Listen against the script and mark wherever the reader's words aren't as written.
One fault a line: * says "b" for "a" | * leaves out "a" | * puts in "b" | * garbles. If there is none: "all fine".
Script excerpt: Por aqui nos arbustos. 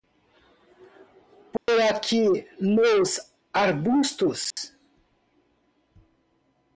all fine